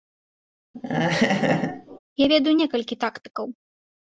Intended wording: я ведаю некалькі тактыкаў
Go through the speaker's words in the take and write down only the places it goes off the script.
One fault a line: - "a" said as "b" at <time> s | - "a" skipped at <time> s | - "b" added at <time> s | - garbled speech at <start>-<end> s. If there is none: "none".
none